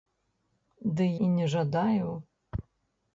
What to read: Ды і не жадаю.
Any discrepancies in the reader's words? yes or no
no